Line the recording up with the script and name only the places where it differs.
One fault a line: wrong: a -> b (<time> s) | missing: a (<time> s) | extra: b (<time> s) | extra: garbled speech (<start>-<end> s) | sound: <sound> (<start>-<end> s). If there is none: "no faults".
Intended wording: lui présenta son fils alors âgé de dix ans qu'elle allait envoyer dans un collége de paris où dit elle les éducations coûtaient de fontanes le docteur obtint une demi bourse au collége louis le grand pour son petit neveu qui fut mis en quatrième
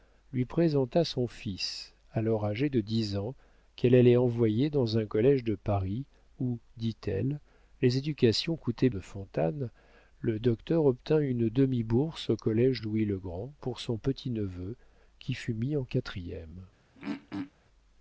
sound: throat clearing (17.0-17.5 s)